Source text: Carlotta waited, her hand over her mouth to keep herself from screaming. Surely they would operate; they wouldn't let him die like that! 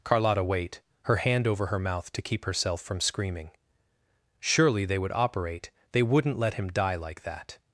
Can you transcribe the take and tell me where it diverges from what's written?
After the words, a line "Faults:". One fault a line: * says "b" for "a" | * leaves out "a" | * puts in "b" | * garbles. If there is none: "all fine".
Carlotta wait, her hand over her mouth to keep herself from screaming. Surely they would operate; they wouldn't let him die like that!
Faults:
* says "wait" for "waited"